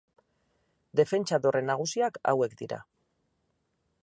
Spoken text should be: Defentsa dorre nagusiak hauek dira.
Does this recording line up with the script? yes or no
yes